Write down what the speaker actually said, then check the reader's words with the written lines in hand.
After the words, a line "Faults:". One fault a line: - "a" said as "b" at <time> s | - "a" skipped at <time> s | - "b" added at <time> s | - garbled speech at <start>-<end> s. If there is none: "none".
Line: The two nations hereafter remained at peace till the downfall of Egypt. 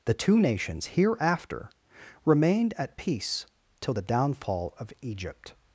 The two nations hereafter remained at peace till the downfall of Egypt.
Faults:
none